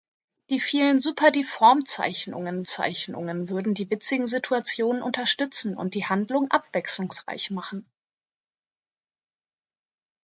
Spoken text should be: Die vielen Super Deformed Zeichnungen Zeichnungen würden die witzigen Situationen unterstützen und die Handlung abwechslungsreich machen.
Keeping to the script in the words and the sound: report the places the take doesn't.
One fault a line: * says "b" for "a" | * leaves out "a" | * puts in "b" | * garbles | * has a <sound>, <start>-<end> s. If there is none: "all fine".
all fine